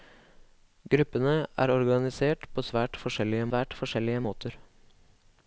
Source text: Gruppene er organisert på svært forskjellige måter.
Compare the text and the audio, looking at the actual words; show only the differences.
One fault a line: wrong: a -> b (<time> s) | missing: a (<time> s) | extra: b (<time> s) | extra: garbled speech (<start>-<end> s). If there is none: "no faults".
extra: svært forskjellige (3.5 s)